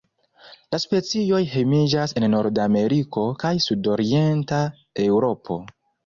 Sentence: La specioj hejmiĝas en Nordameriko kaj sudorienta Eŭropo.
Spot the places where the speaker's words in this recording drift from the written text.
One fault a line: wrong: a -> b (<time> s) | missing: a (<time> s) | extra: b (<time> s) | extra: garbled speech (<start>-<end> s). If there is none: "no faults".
no faults